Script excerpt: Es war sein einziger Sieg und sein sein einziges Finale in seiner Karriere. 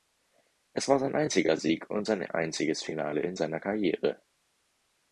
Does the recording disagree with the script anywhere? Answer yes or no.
yes